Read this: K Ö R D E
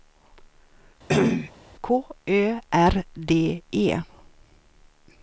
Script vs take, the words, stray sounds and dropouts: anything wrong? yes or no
yes